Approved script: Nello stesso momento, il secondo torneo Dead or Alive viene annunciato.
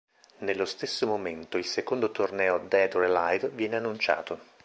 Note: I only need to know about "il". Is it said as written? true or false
true